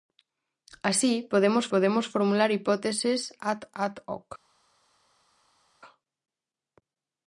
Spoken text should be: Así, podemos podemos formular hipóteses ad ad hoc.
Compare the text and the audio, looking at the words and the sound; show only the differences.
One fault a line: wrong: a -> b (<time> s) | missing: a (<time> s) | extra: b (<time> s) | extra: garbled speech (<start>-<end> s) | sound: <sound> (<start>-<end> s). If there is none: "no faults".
no faults